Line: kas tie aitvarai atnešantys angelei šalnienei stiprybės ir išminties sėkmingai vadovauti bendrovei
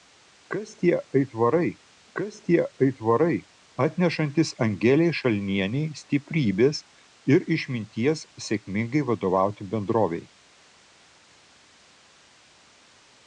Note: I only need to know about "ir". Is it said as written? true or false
true